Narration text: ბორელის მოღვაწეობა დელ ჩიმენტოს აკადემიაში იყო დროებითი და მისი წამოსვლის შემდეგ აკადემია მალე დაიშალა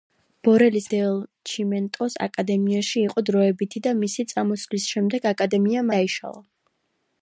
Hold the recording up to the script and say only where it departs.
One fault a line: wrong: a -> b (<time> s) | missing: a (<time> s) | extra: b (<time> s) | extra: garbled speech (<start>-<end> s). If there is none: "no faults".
missing: მოღვაწეობა (0.8 s)
missing: მალე (5.9 s)